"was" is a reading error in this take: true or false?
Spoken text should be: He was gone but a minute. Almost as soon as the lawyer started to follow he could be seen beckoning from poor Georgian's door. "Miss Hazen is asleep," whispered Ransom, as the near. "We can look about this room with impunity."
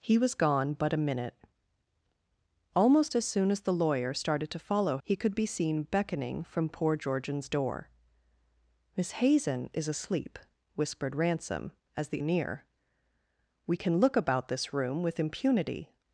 false